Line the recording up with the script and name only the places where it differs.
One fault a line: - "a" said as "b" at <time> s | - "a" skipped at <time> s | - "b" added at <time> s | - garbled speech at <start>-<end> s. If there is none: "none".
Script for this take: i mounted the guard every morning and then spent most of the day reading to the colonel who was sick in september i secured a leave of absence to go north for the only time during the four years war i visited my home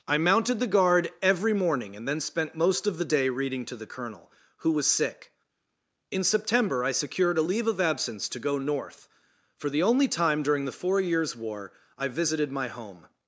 none